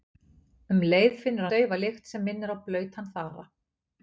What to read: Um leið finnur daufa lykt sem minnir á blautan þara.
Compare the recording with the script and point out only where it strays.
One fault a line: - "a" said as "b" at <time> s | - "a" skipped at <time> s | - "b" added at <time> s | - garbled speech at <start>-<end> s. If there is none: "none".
none